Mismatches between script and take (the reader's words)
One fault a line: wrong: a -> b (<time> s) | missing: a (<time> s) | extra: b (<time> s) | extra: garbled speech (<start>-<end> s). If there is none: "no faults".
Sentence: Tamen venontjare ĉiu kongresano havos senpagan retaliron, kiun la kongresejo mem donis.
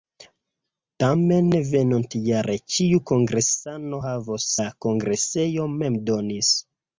missing: senpagan retaliron kiun (4.5 s)